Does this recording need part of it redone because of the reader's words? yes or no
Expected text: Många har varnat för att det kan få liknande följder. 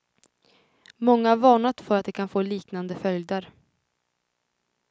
no